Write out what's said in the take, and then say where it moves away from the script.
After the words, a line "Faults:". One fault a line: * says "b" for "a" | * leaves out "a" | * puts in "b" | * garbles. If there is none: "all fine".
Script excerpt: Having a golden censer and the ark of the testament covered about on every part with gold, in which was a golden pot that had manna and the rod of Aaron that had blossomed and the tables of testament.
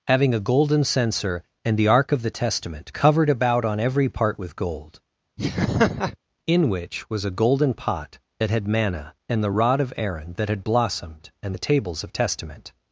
Having a golden censer and the ark of the testament covered about on every part with gold, in which was a golden pot that had manna and the rod of Aaron that had blossomed and the tables of testament.
Faults:
all fine